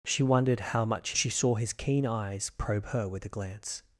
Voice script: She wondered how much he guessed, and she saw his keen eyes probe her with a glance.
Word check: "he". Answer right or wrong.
wrong